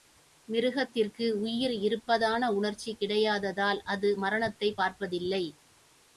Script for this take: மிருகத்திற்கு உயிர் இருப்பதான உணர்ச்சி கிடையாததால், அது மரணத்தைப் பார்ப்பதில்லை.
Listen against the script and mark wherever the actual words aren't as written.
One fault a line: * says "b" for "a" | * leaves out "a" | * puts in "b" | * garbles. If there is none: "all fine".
all fine